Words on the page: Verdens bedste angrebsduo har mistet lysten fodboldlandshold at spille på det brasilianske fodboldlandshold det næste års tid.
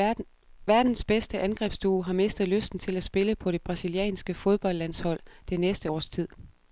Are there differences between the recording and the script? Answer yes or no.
yes